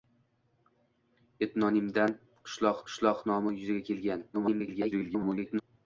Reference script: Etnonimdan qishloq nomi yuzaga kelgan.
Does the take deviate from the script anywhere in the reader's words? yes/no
yes